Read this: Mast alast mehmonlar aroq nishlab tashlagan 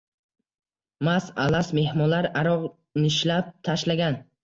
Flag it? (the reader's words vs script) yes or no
no